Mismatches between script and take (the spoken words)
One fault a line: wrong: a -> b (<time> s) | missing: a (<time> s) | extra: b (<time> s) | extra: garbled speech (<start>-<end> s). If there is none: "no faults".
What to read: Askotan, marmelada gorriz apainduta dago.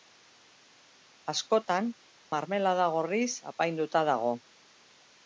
no faults